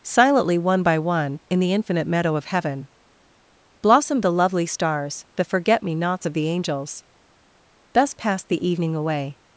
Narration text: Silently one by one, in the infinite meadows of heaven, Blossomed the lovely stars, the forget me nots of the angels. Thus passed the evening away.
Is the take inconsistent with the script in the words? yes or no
yes